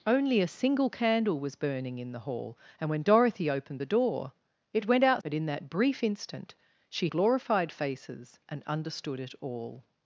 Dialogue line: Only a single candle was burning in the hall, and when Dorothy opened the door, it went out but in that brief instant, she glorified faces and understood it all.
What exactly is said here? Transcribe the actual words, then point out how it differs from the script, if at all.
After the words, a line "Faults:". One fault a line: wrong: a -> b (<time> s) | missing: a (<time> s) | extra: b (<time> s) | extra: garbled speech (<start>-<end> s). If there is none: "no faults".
Only a single candle was burning in the hall, and when Dorothy opened the door, it went out but in that brief instant, she glorified faces and understood it all.
Faults:
no faults